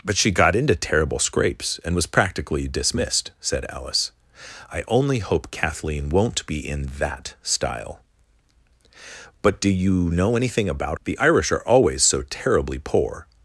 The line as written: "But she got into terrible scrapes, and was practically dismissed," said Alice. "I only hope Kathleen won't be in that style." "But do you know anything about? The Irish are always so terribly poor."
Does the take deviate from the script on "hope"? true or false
false